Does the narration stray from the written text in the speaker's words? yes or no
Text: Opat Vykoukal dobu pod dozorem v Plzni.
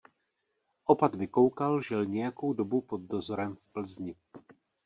yes